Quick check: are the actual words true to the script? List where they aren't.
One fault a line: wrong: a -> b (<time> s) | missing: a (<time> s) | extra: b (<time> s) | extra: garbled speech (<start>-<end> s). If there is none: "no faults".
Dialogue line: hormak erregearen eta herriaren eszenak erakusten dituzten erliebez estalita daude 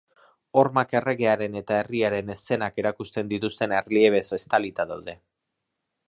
no faults